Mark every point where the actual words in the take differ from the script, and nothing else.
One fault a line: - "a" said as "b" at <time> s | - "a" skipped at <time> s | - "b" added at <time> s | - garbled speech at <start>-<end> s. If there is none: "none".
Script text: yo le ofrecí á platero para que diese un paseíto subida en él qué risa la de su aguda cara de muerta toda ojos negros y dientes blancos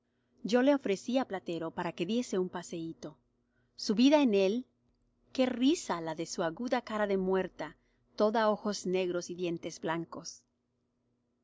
none